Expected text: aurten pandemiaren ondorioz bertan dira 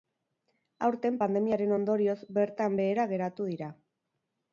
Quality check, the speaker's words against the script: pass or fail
fail